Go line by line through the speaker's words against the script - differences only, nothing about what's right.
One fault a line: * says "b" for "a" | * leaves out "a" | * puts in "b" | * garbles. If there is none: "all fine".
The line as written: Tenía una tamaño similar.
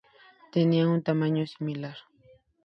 * says "un" for "una"